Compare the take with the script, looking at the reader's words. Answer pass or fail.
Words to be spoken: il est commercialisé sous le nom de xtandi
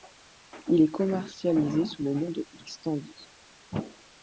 pass